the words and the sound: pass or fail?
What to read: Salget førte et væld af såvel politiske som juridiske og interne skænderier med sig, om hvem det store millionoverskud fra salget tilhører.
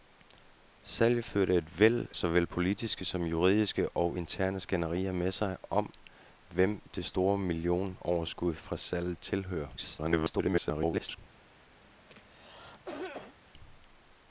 fail